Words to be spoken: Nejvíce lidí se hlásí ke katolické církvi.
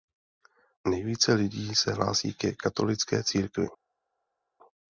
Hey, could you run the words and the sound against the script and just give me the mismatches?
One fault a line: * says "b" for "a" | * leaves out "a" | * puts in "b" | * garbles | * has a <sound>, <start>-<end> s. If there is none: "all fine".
all fine